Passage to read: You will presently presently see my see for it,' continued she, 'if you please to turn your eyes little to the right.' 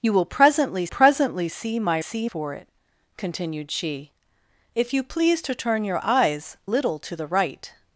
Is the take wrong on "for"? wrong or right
right